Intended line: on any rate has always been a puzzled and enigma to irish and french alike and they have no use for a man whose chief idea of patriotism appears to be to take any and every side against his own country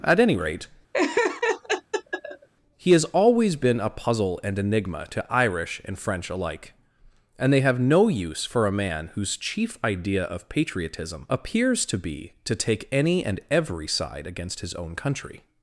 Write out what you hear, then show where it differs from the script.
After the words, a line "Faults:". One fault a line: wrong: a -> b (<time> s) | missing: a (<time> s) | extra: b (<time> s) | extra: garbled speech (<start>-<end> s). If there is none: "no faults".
at any rate he has always been a puzzle and enigma to irish and french alike and they have no use for a man whose chief idea of patriotism appears to be to take any and every side against his own country
Faults:
wrong: on -> at (0.0 s)
extra: he (2.8 s)
wrong: puzzled -> puzzle (3.9 s)